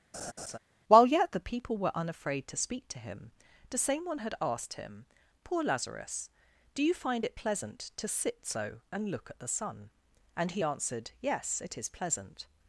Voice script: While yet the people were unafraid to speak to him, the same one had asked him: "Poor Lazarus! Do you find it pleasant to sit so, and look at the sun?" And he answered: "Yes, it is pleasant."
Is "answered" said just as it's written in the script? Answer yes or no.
yes